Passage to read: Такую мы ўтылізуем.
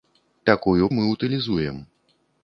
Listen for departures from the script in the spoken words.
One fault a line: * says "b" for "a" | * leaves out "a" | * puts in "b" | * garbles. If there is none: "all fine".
all fine